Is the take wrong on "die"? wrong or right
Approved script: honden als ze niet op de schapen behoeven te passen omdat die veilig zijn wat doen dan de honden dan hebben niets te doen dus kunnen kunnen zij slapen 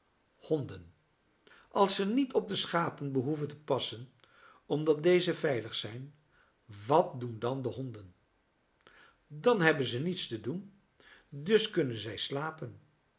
wrong